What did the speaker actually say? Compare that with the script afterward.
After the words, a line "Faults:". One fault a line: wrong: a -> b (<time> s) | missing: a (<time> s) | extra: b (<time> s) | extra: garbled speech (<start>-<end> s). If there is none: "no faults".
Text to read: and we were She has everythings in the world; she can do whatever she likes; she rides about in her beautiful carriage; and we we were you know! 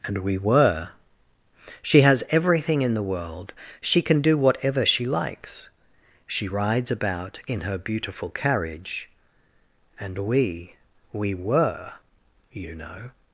and we were She has everything in the world; she can do whatever she likes; she rides about in her beautiful carriage; and we we were you know!
Faults:
wrong: everythings -> everything (2.3 s)